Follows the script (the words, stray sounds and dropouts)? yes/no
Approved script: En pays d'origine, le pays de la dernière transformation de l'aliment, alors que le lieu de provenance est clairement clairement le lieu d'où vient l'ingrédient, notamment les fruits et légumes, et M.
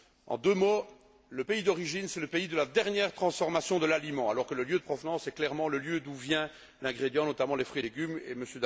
no